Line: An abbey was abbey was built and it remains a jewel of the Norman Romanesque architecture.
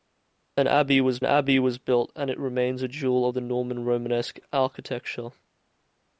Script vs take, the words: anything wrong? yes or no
no